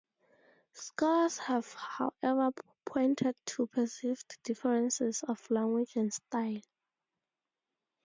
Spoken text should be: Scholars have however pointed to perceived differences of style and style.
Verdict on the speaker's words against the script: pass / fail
fail